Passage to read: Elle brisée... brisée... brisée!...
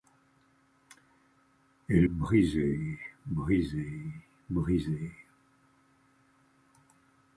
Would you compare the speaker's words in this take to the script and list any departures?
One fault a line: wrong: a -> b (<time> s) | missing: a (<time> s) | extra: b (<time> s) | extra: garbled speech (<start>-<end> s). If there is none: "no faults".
no faults